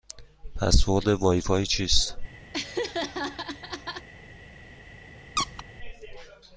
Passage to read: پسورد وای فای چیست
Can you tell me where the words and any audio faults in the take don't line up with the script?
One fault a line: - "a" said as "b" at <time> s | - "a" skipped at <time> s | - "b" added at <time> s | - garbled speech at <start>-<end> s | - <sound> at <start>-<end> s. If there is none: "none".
- laugh at 2.5-4.1 s
- squeak at 5.4-5.6 s